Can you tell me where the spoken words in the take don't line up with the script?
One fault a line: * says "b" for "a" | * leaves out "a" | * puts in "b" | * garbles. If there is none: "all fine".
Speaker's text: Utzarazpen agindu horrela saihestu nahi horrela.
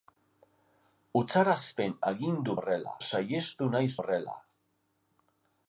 all fine